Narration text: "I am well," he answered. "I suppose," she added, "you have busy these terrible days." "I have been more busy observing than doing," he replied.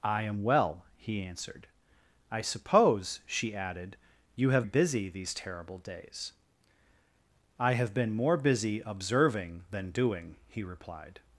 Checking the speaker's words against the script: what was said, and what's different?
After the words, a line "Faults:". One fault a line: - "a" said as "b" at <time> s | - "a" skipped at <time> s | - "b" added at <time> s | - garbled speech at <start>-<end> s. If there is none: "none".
"I am well," he answered. "I suppose," she added, "you have busy these terrible days." "I have been more busy observing than doing," he replied.
Faults:
none